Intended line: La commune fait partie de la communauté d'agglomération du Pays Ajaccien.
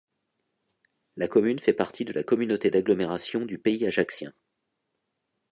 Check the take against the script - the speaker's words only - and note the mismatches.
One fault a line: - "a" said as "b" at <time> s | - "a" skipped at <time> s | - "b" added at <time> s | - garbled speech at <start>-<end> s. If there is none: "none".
none